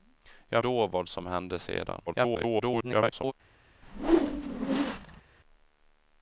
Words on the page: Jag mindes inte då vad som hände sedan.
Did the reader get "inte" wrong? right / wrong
wrong